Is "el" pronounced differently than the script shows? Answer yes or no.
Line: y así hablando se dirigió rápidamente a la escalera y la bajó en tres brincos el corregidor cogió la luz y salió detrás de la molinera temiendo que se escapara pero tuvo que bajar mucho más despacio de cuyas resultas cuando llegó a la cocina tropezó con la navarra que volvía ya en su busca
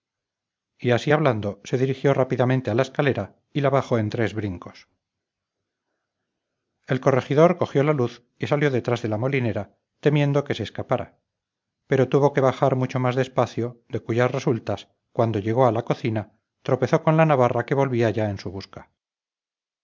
no